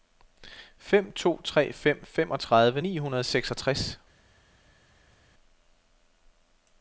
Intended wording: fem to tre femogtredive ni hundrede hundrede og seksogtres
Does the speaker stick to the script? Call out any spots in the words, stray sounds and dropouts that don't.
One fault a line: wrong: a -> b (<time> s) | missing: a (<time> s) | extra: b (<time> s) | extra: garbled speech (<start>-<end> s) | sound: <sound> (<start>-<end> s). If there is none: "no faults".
extra: fem (1.7 s)
missing: hundrede (3.2 s)